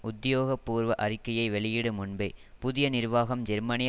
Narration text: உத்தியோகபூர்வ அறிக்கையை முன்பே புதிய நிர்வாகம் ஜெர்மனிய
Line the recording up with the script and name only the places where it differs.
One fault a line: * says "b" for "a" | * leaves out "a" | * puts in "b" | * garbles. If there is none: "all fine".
* puts in "வெளியிடும்"